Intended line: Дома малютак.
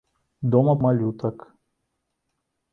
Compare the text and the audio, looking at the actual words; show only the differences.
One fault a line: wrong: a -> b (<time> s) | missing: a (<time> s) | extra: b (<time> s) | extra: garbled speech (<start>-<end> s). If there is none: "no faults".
no faults